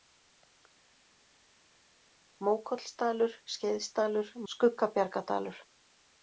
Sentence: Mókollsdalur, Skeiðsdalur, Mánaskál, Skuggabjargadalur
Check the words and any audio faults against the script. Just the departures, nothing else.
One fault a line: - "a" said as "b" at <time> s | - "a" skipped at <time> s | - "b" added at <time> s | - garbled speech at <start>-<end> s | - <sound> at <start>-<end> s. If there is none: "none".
- "Mánaskál" skipped at 4.3 s